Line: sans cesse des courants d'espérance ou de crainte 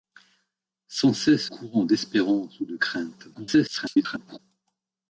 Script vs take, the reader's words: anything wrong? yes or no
yes